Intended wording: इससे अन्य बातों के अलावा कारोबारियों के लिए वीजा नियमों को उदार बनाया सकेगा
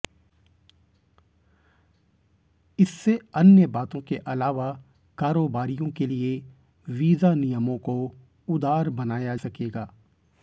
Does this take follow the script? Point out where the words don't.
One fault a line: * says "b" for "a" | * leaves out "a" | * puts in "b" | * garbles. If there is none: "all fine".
all fine